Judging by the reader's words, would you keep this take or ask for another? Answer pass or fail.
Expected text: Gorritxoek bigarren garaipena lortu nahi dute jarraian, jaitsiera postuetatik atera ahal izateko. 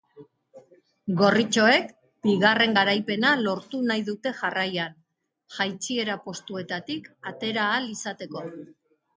pass